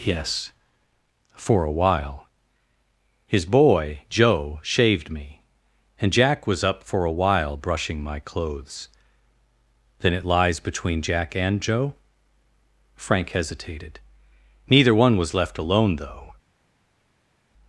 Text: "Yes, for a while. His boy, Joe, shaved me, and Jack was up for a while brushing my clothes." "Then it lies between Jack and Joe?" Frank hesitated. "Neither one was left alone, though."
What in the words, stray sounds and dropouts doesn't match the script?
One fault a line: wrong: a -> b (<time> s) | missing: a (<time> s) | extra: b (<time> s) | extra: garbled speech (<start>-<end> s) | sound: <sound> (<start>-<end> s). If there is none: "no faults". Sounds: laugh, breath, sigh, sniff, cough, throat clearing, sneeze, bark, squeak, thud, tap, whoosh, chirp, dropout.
no faults